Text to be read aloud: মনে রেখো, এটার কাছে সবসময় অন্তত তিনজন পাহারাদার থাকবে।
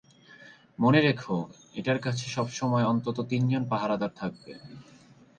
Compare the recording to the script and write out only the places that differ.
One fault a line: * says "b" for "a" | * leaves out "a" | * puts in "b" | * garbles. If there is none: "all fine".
all fine